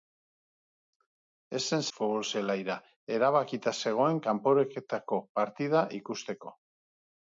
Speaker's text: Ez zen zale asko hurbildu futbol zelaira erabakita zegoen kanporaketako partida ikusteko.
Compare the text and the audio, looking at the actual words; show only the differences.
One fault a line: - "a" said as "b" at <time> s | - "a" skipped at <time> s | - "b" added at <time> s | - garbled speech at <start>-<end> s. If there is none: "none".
- "zale asko hurbildu" skipped at 1.9 s